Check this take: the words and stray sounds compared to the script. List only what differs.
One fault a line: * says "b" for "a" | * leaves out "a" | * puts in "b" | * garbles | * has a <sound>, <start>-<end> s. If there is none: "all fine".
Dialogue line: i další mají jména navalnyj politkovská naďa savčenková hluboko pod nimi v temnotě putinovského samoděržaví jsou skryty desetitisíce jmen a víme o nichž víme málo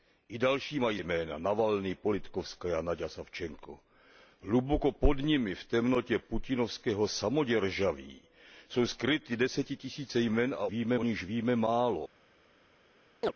* has a chirp, 13.2-13.3 s